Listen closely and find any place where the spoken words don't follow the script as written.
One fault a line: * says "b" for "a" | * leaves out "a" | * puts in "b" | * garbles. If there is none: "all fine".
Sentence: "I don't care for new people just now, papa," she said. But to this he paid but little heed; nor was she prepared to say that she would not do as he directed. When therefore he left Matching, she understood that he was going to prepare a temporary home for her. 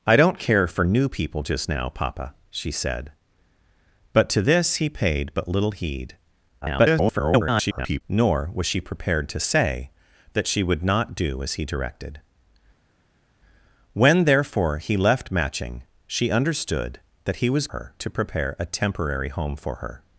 * garbles
* says "her" for "going"